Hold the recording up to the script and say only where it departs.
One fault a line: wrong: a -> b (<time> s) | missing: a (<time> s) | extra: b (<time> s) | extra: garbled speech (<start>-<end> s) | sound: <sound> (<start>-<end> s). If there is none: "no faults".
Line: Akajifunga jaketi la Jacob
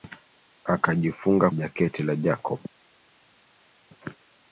no faults